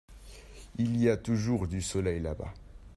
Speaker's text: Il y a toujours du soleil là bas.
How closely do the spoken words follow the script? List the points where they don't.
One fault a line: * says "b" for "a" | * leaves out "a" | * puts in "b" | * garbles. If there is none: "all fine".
all fine